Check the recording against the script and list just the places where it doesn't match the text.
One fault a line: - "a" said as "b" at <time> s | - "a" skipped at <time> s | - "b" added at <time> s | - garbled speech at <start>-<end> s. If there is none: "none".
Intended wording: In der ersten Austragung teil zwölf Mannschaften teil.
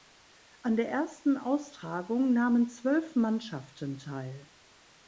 - "In" said as "An" at 0.6 s
- "teil" said as "nahmen" at 2.3 s